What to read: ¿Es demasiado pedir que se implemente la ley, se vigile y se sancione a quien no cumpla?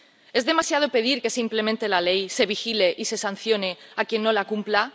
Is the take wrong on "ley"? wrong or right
right